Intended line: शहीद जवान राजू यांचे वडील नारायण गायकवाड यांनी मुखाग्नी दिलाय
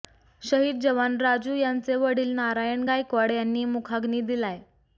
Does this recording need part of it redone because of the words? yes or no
no